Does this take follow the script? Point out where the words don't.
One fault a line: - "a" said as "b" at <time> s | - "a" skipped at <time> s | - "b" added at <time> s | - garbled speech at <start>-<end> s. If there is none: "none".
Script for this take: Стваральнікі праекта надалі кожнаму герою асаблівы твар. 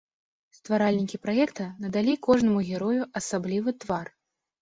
none